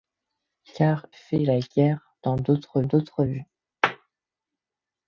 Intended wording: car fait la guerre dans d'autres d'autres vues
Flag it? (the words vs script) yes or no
no